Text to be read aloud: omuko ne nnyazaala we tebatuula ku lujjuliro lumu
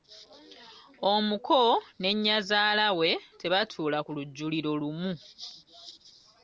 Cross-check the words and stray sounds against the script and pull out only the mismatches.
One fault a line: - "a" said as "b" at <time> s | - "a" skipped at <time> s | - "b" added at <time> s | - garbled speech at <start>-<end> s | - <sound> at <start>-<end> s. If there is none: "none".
none